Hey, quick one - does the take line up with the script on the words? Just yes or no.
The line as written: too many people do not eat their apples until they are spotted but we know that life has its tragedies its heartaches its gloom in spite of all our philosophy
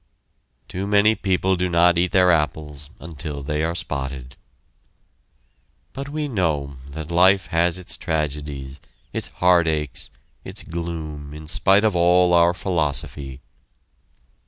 yes